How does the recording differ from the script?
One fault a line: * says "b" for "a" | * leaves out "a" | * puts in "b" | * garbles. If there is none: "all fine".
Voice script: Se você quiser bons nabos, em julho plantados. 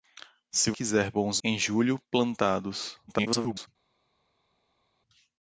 * leaves out "você"
* leaves out "nabos"
* garbles